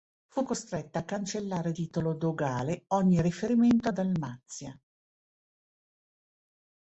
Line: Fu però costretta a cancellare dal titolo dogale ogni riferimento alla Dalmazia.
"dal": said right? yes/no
no